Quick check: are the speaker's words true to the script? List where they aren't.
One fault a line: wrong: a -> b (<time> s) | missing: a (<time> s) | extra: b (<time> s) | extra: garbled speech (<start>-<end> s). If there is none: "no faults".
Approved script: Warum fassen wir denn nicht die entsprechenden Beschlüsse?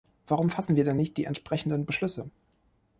no faults